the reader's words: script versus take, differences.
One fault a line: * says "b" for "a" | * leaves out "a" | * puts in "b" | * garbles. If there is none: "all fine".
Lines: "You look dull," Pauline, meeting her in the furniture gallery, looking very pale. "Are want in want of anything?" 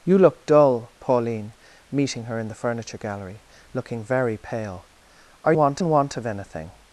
all fine